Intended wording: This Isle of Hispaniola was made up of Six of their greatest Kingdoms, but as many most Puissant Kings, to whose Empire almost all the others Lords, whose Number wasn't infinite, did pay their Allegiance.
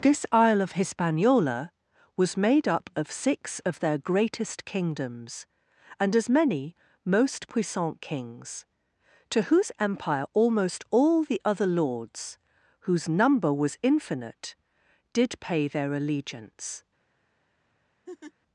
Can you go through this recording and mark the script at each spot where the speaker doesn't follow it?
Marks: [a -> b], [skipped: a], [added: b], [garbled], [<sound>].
This Isle of Hispaniola was made up of Six of their greatest Kingdoms, [but -> and] as many most Puissant Kings, to whose Empire almost all the [others -> other] Lords, whose Number [wasn't -> was] infinite, did pay their Allegiance. [laugh]